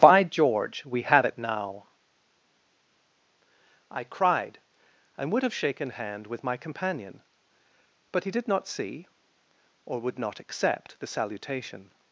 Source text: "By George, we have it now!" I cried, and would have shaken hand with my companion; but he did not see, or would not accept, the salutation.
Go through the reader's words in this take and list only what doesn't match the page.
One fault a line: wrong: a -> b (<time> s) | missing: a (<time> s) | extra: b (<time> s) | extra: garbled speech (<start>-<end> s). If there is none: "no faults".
no faults